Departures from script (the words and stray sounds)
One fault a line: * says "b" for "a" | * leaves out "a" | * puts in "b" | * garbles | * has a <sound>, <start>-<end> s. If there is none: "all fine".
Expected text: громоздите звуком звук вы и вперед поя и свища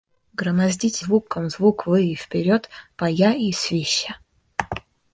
all fine